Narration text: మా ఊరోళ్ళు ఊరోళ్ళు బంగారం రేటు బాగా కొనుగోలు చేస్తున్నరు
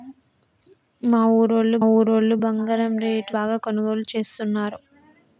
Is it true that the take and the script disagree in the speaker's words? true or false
false